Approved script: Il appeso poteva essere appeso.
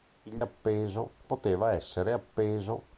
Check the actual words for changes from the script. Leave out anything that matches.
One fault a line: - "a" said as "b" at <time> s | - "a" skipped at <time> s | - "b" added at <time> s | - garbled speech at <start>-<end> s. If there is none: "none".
none